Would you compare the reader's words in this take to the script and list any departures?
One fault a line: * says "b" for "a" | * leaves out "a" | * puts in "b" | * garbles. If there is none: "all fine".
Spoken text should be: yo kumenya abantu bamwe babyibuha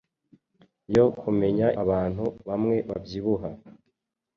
all fine